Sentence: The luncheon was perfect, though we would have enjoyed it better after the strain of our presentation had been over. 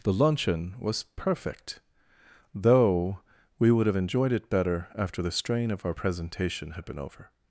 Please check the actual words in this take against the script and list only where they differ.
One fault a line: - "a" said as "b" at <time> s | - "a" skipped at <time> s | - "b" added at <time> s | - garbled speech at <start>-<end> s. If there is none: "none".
none